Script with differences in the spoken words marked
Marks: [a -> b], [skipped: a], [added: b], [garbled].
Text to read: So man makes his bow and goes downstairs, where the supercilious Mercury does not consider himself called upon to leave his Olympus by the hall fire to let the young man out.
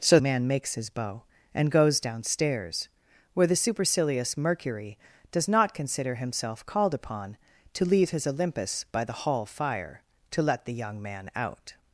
So man makes his bow and goes downstairs, where the supercilious Mercury does not consider himself called upon to leave his Olympus by the hall fire to let the young man out.